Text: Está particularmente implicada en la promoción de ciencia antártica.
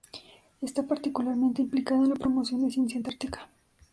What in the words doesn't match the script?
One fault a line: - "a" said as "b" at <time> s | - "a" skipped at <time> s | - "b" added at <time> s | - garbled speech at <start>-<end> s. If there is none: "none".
none